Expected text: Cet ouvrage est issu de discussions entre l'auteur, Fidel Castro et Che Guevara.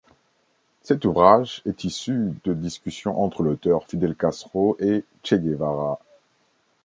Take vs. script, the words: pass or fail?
pass